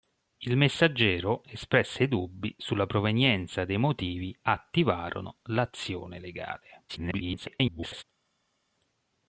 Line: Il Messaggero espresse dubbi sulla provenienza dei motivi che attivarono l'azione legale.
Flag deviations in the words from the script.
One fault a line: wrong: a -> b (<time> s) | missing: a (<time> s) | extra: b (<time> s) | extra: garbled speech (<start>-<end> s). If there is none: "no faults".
missing: che (4.4 s)
extra: garbled speech (6.9-8.0 s)